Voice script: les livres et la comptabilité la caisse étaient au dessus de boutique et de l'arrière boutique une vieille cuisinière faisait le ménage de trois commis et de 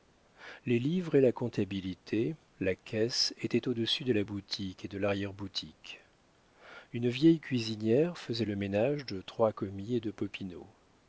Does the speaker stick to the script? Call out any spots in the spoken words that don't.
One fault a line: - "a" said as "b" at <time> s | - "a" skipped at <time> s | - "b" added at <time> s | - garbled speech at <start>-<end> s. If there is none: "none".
- "la" added at 4.1 s